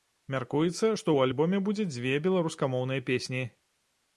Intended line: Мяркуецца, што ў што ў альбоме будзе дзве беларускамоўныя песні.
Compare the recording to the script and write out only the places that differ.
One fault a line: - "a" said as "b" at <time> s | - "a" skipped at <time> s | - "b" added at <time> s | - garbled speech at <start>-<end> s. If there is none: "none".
- "што ў" skipped at 1.3 s